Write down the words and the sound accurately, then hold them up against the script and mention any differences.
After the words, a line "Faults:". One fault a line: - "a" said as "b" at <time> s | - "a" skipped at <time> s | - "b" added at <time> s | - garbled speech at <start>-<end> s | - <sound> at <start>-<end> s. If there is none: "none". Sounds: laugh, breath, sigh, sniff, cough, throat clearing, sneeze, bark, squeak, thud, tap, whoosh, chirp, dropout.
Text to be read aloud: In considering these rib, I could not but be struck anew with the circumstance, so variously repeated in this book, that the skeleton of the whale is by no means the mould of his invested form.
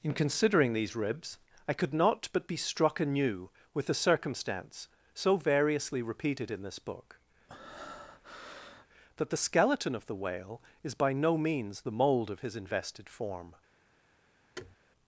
In considering these ribs, I could not but be struck anew with the circumstance, so variously repeated in this book, that the skeleton of the whale is by no means the mould of his invested form.
Faults:
- "rib" said as "ribs" at 0.9 s
- breath at 7.5-8.9 s
- thud at 14.6-14.8 s